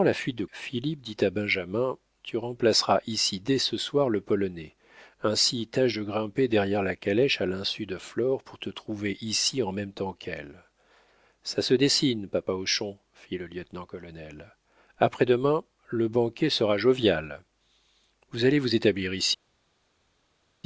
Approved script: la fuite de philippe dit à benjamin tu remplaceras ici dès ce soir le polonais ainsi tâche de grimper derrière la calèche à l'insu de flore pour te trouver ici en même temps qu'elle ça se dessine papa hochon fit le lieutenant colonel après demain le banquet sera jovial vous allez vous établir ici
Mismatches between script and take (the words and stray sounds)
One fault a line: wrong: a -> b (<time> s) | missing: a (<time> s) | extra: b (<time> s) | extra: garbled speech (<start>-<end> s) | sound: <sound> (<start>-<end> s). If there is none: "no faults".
no faults